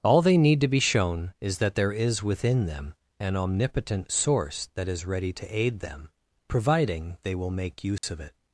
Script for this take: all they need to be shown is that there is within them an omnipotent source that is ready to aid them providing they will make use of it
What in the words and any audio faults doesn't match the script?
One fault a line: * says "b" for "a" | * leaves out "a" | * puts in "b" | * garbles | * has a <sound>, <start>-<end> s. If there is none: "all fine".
* has a dropout, 8.0-8.0 s